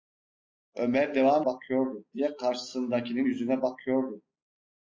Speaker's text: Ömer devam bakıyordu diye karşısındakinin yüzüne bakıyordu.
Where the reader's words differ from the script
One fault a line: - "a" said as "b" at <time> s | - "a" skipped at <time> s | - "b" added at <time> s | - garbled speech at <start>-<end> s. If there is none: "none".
none